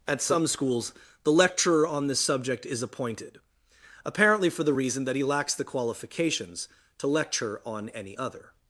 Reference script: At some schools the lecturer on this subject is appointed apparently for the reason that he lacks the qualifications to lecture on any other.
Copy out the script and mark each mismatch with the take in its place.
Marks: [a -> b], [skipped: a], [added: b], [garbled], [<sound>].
At some schools the lecturer on this subject is appointed apparently for the reason that he lacks the qualifications to lecture on any other.